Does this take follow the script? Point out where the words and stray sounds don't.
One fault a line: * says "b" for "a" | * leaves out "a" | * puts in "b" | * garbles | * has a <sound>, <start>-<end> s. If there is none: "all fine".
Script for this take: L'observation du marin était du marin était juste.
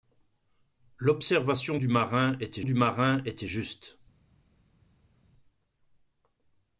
all fine